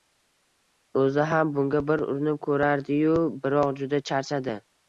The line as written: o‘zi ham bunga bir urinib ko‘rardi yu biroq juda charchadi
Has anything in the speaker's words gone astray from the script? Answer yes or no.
no